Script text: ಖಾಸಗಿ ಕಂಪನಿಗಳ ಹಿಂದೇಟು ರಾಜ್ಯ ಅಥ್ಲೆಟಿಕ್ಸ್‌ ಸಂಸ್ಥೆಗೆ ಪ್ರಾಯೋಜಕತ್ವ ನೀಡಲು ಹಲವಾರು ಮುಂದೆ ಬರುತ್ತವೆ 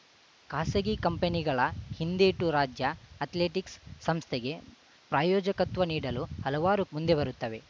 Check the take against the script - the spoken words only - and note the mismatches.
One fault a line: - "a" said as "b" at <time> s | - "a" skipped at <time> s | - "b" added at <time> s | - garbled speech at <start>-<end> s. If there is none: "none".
none